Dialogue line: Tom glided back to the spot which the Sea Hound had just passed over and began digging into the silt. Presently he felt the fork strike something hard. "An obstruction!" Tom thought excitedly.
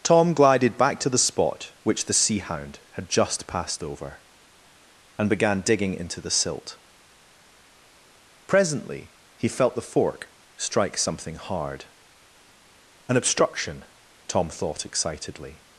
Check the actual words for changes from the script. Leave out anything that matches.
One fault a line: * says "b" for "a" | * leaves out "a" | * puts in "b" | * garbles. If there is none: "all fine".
all fine